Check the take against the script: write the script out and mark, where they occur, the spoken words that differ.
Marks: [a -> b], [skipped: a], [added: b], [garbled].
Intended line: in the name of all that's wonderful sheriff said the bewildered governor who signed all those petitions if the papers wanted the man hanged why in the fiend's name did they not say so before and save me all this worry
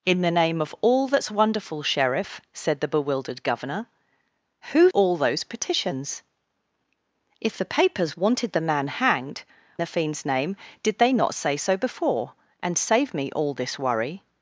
in the name of all that's wonderful sheriff said the bewildered governor who [skipped: signed] all those petitions if the papers wanted the man hanged [skipped: why in] the fiend's name did they not say so before and save me all this worry